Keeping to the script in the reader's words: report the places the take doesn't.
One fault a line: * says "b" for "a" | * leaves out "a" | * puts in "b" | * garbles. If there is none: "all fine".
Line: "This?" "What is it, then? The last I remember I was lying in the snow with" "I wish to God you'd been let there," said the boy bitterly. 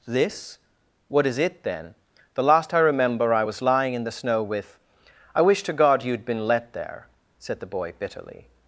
all fine